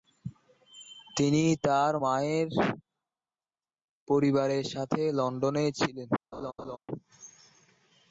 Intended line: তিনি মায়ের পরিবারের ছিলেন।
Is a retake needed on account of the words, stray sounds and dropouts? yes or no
yes